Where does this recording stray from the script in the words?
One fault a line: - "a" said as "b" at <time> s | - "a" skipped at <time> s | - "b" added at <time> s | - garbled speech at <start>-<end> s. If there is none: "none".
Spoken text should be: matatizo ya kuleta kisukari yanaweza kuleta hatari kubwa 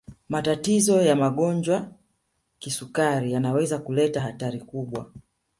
- "kuleta" said as "magonjwa" at 1.1 s